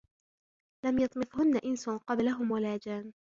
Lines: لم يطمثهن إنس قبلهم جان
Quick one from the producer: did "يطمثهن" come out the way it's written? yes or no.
yes